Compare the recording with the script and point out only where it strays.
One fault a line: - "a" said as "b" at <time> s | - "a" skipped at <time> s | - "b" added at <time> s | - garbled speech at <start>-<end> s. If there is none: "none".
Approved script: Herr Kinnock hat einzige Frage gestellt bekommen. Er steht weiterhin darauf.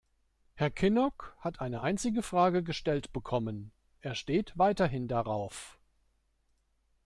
- "eine" added at 1.6 s